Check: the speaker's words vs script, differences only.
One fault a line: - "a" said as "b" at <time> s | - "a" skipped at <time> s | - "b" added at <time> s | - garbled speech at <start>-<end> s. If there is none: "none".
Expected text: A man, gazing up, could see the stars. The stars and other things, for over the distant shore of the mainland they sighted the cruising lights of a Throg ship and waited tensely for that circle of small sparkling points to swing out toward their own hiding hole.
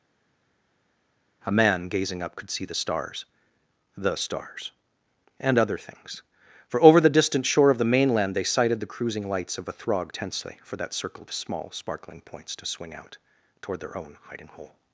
- "ship and waited" skipped at 10.1 s